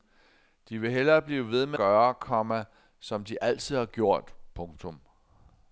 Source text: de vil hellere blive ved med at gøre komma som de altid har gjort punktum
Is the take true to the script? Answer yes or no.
no